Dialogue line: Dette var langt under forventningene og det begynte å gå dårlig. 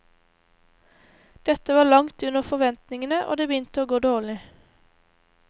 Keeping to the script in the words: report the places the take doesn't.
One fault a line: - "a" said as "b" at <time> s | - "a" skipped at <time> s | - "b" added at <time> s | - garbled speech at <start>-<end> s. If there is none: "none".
none